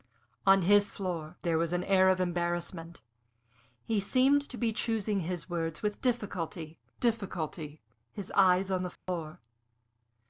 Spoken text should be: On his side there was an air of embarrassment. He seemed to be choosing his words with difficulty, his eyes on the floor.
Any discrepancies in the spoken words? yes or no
yes